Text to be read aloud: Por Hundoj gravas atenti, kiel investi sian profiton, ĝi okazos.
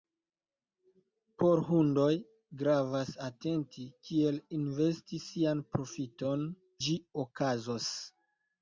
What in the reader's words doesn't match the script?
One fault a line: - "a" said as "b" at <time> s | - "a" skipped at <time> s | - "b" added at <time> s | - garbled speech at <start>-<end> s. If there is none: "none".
none